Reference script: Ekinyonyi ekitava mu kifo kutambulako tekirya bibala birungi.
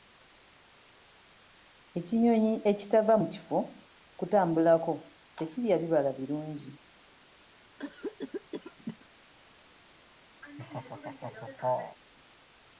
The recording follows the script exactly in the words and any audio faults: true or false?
false